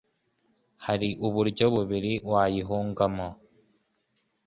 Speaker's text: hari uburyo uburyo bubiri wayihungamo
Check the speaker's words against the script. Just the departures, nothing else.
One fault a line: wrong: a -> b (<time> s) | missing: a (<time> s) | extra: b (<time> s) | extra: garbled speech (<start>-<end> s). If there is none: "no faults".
missing: uburyo (1.7 s)